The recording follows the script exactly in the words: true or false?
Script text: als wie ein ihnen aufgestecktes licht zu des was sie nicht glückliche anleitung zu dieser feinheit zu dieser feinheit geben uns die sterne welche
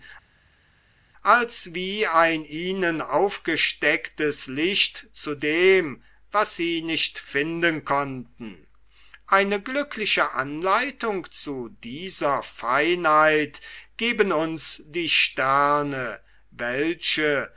false